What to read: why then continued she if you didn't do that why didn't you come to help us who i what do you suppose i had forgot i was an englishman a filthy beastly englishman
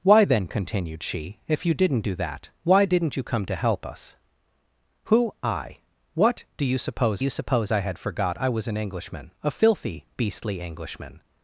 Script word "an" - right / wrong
right